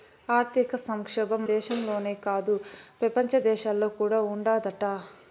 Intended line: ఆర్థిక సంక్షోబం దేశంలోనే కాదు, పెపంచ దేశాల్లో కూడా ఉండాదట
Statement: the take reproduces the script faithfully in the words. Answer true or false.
true